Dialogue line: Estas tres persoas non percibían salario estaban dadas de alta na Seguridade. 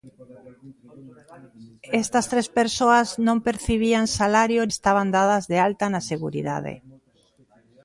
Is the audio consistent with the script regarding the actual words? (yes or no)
yes